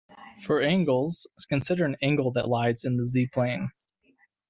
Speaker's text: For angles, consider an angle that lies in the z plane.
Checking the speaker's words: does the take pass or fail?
pass